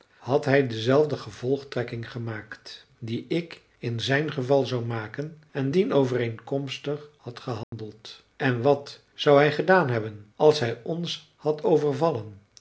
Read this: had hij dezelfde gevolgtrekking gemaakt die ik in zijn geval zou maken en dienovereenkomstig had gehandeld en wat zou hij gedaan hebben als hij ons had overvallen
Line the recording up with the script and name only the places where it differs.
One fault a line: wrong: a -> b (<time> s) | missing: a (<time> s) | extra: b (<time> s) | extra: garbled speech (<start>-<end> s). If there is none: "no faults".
no faults